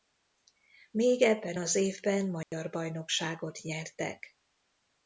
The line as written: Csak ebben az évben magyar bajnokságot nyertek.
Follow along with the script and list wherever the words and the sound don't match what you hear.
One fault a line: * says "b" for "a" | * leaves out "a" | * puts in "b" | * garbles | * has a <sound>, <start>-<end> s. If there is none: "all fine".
* says "Még" for "Csak"
* has a dropout, 2.4-2.5 s